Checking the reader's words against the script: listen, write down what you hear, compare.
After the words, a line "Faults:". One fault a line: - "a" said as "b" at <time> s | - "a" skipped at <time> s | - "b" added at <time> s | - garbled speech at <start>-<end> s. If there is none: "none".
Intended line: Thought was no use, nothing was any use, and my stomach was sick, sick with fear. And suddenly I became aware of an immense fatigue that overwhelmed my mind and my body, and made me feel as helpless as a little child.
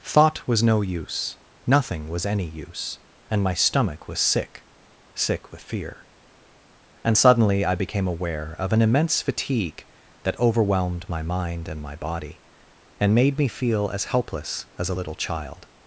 Thought was no use, nothing was any use, and my stomach was sick, sick with fear. And suddenly I became aware of an immense fatigue that overwhelmed my mind and my body, and made me feel as helpless as a little child.
Faults:
none